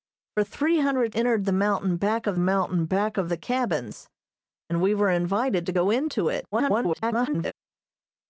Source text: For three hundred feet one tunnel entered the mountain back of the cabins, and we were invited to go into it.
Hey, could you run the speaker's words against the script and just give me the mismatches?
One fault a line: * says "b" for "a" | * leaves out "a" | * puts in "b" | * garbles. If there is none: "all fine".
* says "entered the mountain back of" for "feet one tunnel entered the"
* garbles